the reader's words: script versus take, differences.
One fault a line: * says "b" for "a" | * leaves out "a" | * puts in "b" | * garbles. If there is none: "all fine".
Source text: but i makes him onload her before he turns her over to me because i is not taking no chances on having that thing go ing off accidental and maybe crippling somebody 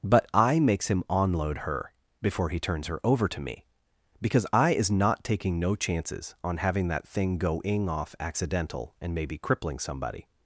all fine